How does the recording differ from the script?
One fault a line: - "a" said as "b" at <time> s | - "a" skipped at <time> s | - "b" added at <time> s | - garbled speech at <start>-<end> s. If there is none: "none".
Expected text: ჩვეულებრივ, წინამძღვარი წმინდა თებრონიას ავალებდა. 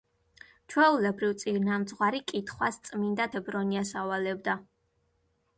- "კითხვას" added at 2.3 s